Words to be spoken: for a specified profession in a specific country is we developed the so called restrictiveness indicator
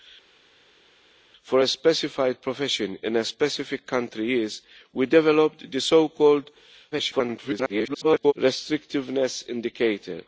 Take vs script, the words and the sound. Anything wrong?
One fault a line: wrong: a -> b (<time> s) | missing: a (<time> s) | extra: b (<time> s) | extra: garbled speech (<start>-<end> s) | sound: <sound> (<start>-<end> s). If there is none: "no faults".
extra: garbled speech (6.9-8.3 s)